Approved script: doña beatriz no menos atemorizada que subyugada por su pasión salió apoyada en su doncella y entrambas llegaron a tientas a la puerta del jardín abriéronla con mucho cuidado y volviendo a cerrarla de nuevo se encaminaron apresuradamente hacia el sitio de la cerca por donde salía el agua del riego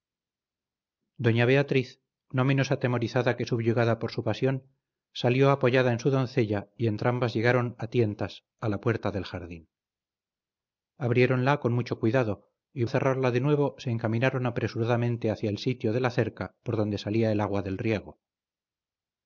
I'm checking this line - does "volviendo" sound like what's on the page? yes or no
no